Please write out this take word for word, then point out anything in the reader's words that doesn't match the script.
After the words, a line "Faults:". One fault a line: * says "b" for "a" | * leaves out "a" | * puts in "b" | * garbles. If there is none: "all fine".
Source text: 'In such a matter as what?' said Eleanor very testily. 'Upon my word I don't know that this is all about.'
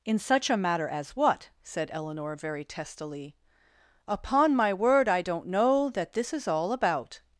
'In such a matter as what?' said Eleanor very testily. 'Upon my word I don't know that this is all about.'
Faults:
all fine